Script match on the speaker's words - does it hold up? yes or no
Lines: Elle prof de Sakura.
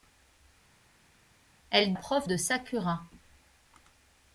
yes